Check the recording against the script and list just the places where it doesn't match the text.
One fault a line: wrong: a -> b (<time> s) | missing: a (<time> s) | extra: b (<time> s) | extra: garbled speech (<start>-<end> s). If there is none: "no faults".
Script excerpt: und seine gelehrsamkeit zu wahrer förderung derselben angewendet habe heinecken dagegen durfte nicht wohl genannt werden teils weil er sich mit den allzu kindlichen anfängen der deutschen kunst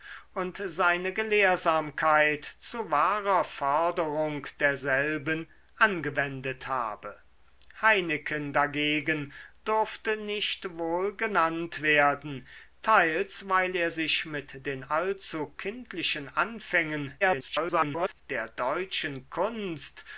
extra: garbled speech (17.2-18.2 s)